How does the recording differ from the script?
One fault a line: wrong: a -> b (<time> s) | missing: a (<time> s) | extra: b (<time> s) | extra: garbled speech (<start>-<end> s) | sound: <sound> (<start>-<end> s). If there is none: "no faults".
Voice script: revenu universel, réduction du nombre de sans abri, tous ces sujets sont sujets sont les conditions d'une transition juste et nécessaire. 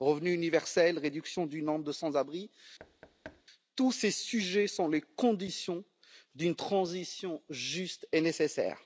sound: thud (2.8-3.4 s)
missing: sujets sont (4.9 s)